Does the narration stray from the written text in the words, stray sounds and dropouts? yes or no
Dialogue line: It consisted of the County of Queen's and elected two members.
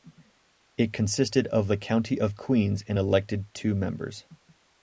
no